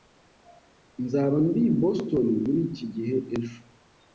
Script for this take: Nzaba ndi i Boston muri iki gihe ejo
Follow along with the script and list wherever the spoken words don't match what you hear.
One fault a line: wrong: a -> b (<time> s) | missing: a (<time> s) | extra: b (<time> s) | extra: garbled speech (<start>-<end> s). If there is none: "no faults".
no faults